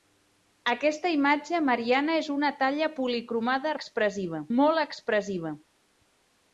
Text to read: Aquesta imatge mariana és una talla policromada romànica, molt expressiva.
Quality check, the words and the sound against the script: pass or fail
fail